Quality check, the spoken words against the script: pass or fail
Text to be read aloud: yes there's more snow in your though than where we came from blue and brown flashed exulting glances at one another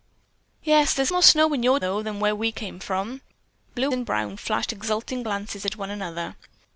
pass